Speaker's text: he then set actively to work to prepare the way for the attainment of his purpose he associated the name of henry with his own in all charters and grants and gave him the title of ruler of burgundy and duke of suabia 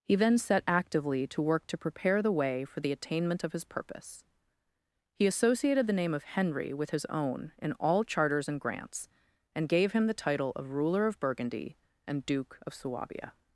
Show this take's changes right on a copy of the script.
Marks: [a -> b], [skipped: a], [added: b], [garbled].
he then set actively to work to prepare the way for the attainment of his purpose he associated the name of henry with his own in all charters and grants and gave him the title of ruler of burgundy and duke of suabia